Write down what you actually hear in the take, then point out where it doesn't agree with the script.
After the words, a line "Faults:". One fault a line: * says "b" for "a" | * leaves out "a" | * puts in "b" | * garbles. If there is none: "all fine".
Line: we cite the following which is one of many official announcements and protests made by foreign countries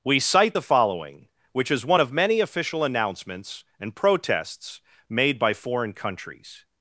we cite the following which is one of many official announcements and protests made by foreign countries
Faults:
all fine